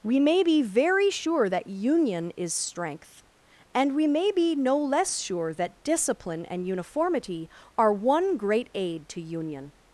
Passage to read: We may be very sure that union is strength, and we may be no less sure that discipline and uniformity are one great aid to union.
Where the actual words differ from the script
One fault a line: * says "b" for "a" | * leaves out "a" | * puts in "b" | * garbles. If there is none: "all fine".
all fine